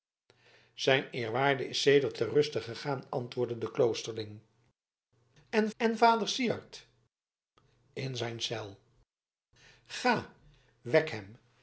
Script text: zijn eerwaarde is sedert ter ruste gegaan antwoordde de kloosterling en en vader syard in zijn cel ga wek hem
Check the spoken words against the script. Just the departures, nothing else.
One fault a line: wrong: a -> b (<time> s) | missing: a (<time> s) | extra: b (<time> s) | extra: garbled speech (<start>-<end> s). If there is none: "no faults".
no faults